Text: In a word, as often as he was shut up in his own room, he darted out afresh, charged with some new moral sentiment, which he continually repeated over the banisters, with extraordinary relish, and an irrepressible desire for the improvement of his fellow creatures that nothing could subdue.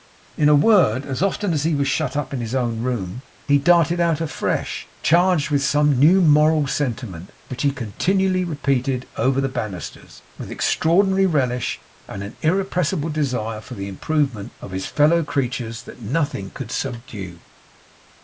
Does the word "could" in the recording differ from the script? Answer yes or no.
no